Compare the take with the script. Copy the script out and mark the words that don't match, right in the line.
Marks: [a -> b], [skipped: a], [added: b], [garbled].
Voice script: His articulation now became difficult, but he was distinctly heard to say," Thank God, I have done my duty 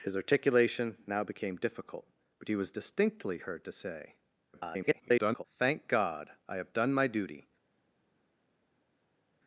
His articulation now became difficult, but he was distinctly heard to say," [garbled] Thank God, I have done my duty